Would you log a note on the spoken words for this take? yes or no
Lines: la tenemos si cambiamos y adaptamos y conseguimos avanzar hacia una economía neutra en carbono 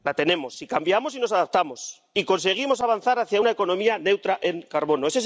yes